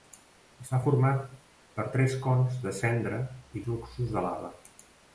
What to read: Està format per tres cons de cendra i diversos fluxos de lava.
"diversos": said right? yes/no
no